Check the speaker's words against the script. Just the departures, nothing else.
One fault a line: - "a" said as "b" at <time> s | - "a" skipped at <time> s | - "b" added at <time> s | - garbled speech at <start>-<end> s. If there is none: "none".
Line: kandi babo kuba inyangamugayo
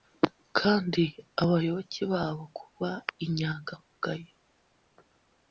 - "abayoboke" added at 1.4 s